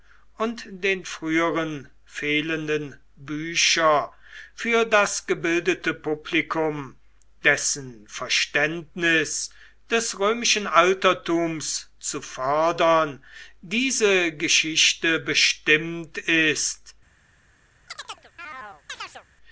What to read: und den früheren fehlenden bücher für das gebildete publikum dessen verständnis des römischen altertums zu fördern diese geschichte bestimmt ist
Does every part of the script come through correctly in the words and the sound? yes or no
no